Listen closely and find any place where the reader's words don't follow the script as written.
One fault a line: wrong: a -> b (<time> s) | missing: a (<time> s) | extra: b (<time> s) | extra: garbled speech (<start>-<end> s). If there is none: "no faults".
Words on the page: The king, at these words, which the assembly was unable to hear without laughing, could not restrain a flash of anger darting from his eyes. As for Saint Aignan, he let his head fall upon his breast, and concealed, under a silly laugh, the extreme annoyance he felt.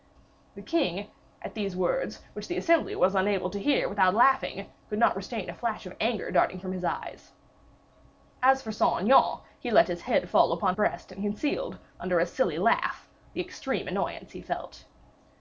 missing: his (10.8 s)